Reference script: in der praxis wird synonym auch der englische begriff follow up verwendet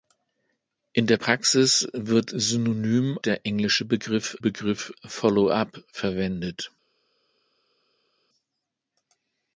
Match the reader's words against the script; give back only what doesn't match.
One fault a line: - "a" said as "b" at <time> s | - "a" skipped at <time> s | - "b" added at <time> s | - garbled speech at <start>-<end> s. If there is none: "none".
- "auch" skipped at 3.2 s
- "begriff" added at 4.4 s